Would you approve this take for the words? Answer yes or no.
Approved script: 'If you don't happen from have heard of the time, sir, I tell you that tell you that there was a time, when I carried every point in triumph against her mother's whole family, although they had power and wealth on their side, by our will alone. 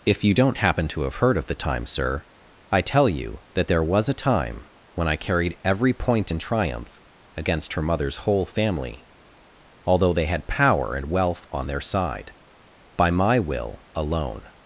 no